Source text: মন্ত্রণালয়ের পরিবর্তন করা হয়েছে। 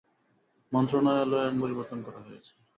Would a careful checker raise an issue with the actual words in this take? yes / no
no